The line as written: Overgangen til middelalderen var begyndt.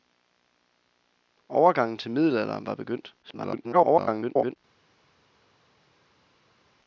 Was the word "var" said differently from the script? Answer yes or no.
no